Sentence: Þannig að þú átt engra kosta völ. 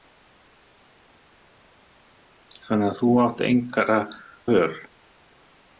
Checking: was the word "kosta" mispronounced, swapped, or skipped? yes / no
yes